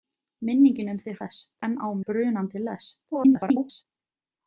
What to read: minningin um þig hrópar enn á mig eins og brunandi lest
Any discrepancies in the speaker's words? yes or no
yes